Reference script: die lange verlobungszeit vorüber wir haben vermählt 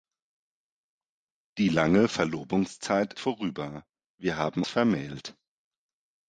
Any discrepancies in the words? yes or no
no